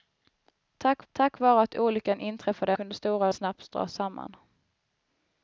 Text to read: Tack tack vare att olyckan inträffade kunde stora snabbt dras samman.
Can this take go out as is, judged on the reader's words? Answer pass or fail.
pass